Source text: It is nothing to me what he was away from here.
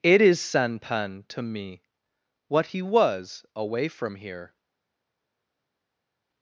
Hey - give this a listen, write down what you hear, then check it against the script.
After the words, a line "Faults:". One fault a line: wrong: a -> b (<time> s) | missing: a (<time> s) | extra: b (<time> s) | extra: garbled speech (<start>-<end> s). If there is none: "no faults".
It is sanpan to me what he was away from here.
Faults:
wrong: nothing -> sanpan (0.4 s)